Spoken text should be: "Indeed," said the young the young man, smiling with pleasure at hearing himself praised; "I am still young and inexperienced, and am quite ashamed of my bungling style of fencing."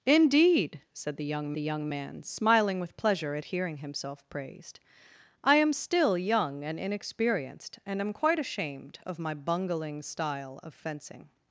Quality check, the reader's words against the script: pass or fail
pass